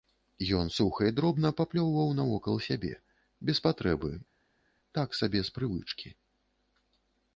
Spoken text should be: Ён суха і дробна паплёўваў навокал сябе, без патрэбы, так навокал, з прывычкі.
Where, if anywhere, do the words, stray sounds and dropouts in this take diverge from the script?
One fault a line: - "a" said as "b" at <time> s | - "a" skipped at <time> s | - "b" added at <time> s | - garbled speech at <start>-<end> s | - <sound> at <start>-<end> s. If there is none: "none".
- "навокал" said as "сабе" at 5.2 s